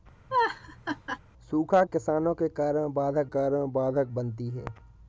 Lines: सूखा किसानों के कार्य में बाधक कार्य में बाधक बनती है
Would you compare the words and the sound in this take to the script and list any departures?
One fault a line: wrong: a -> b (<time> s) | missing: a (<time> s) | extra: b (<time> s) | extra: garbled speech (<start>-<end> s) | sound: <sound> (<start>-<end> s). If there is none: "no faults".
sound: laugh (0.3-1.2 s)